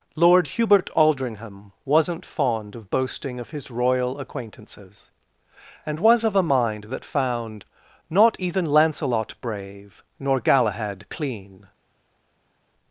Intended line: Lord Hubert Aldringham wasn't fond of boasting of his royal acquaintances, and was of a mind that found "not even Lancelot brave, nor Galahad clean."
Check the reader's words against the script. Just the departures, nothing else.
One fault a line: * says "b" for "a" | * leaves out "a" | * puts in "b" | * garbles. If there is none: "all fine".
all fine